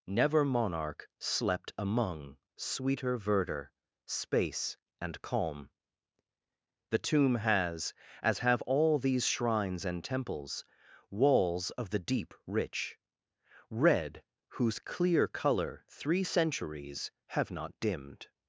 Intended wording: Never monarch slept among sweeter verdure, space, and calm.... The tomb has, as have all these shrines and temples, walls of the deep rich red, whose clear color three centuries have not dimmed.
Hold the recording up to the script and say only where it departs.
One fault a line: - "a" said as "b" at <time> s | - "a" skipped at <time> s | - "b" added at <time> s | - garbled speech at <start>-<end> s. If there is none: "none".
none